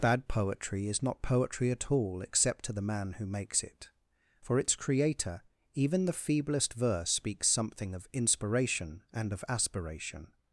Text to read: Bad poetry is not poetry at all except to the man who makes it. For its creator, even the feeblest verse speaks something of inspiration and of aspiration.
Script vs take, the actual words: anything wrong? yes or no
no